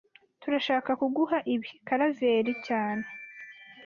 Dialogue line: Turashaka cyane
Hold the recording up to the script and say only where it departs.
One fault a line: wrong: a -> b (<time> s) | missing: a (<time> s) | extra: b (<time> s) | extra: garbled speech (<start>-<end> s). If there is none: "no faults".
extra: kuguha ibi Karaveri (1.0 s)